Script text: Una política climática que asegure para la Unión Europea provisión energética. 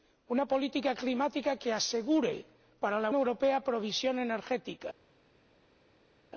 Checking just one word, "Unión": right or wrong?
wrong